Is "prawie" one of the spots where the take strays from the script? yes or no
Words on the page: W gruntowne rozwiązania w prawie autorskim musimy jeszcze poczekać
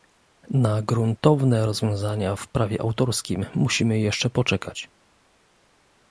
no